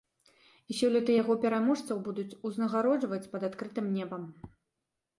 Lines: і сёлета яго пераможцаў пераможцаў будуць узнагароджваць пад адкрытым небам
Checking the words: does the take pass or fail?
fail